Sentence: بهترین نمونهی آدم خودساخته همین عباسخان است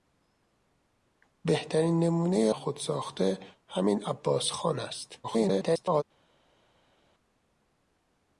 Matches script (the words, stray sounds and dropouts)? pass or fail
fail